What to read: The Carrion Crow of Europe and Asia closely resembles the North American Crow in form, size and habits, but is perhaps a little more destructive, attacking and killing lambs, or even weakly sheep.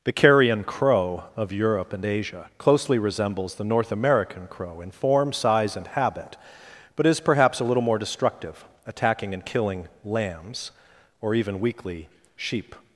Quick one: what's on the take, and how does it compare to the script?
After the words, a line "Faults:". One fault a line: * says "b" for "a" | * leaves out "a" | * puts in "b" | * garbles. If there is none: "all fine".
The Carrion Crow of Europe and Asia closely resembles the North American Crow in form, size and habit, but is perhaps a little more destructive, attacking and killing lambs, or even weakly sheep.
Faults:
* says "habit" for "habits"